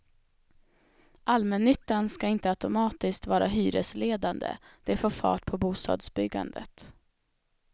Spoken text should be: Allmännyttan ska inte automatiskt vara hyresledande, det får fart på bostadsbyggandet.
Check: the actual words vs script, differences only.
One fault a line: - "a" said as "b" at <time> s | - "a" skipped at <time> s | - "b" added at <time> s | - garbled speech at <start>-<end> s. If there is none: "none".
none